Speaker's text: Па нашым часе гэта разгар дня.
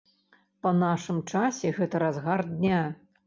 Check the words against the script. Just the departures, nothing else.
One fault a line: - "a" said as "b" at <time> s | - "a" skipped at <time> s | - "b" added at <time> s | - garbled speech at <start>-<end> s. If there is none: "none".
none